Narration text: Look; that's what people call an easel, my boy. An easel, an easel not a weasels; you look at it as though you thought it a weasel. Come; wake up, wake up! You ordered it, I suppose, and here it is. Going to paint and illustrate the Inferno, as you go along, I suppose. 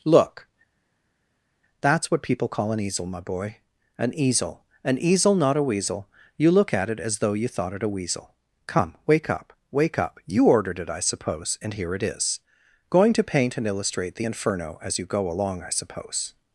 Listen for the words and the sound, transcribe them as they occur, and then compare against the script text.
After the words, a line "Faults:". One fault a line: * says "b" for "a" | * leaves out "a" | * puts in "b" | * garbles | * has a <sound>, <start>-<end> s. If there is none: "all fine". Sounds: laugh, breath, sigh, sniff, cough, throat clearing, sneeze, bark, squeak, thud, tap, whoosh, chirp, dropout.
Look; that's what people call an easel, my boy. An easel, an easel not a weasel; you look at it as though you thought it a weasel. Come; wake up, wake up! You ordered it, I suppose, and here it is. Going to paint and illustrate the Inferno, as you go along, I suppose.
Faults:
* says "weasel" for "weasels"